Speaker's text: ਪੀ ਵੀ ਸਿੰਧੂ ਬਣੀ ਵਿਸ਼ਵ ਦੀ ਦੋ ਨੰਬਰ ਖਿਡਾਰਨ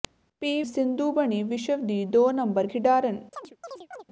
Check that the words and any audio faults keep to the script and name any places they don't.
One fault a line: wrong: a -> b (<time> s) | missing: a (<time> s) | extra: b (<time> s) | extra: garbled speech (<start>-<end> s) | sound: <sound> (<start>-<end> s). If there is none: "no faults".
missing: ਵੀ (0.6 s)
sound: chirp (3.3-4.0 s)